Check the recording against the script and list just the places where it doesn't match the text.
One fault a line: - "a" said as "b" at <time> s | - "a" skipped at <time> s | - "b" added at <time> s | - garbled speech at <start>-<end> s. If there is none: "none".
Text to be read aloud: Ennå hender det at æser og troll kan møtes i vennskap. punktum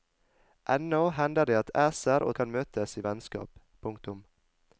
- "troll" skipped at 2.4 s